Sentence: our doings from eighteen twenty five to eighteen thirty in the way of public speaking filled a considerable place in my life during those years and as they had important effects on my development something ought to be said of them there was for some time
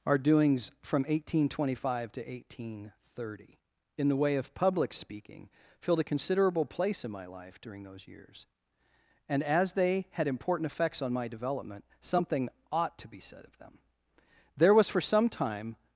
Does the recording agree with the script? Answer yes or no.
yes